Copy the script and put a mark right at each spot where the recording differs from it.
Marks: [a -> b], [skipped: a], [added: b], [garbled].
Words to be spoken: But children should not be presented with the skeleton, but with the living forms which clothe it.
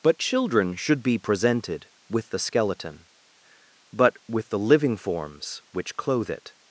But children should [skipped: not] be presented with the skeleton, but with the living forms which clothe it.